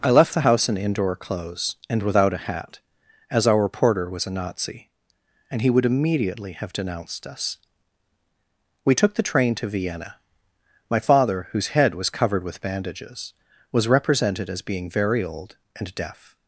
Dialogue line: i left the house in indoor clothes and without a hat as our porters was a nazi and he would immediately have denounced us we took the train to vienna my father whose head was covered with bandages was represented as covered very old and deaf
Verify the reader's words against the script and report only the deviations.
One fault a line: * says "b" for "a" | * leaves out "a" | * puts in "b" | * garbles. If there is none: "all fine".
* says "porter" for "porters"
* says "being" for "covered"